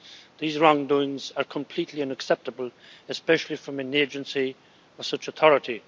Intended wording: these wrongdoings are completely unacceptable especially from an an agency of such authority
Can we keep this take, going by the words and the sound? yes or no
no